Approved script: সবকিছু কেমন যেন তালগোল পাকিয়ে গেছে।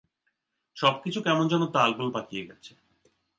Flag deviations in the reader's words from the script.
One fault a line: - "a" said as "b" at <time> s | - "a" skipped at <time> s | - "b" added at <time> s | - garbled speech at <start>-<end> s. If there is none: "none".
none